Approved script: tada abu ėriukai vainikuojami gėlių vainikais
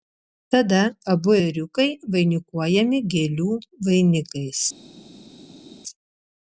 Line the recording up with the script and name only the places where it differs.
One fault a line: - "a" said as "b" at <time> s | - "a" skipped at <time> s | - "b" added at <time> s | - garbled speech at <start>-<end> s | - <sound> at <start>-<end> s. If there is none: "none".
none